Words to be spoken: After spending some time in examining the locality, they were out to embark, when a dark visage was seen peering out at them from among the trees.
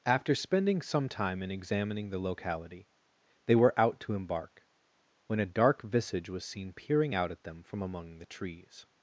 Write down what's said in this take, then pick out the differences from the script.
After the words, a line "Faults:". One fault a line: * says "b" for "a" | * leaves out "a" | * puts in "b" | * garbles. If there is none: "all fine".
After spending some time in examining the locality, they were out to embark, when a dark visage was seen peering out at them from among the trees.
Faults:
all fine